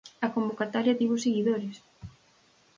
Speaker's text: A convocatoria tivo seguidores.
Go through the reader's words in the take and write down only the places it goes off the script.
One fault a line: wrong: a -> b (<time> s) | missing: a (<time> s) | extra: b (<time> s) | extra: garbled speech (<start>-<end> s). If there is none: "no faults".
no faults